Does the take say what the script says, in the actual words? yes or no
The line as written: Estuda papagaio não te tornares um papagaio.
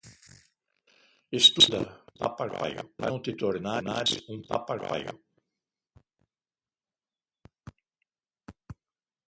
yes